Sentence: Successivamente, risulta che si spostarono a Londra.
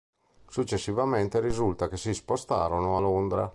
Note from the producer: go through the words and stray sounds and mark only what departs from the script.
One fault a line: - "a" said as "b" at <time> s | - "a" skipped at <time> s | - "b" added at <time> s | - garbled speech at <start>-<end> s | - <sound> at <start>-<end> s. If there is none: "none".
none